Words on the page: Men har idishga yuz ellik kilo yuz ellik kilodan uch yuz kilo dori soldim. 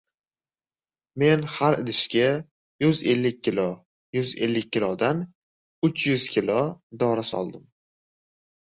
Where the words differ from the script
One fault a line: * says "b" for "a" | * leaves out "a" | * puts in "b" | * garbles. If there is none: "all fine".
all fine